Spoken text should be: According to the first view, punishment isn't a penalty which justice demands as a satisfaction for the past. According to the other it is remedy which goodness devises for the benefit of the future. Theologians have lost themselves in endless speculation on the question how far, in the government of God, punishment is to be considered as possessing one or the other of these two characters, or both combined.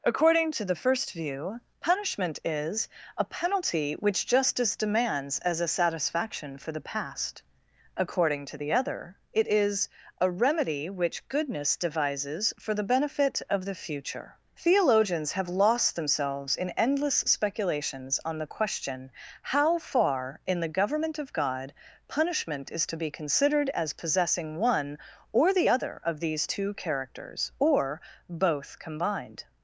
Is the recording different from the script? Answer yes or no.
yes